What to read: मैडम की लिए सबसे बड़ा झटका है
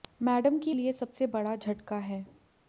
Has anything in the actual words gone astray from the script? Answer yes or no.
no